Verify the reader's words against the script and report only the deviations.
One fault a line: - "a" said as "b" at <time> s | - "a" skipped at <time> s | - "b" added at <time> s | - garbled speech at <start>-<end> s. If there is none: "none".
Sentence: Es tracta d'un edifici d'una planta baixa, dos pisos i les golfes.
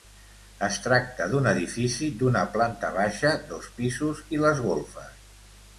none